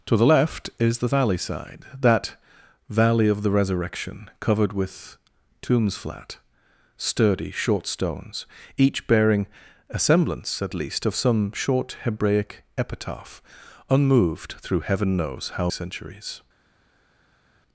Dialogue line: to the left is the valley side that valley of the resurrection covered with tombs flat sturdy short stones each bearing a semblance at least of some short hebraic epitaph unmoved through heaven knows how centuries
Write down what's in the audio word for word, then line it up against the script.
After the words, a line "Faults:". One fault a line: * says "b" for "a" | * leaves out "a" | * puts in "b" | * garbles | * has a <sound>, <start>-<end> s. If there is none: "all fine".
to the left is the valley side that valley of the resurrection covered with tombs flat sturdy short stones each bearing a semblance at least of some short hebraic epitaph unmoved through heaven knows how centuries
Faults:
all fine